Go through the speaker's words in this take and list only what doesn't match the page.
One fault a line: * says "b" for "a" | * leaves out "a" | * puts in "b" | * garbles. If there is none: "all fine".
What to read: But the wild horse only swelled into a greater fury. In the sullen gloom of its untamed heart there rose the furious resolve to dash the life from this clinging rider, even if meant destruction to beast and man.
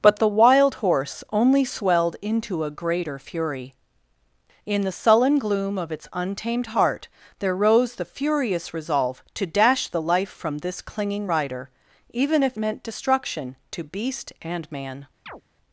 all fine